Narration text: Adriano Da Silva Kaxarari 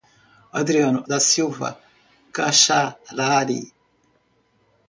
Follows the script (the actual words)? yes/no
yes